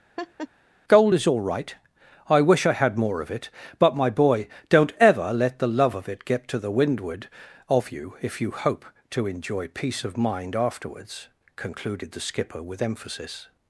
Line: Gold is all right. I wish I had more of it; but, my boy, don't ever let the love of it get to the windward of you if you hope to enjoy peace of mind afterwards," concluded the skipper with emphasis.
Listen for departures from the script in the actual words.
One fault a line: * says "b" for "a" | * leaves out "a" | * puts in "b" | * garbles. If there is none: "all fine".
all fine